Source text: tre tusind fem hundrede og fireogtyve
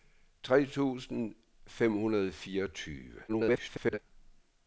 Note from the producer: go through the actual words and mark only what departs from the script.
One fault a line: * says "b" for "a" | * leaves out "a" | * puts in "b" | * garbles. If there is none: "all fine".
* garbles